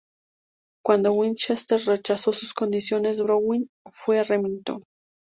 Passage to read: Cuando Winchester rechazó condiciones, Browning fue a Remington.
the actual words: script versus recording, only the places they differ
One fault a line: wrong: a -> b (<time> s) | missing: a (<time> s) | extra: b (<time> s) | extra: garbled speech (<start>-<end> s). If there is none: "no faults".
extra: sus (2.3 s)